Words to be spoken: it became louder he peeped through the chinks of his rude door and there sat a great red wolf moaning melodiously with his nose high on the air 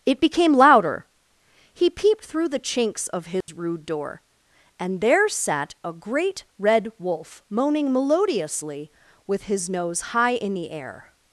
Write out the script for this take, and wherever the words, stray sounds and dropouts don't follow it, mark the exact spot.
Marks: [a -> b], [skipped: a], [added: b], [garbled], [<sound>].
it became louder he peeped through the chinks of his [dropout] rude door and there sat a great red wolf moaning melodiously with his nose high [on -> in] the air